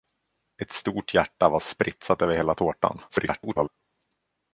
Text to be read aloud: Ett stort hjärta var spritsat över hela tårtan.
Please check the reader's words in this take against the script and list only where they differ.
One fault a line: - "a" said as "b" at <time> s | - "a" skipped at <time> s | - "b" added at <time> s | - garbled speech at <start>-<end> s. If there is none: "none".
- garbled speech at 3.1-3.7 s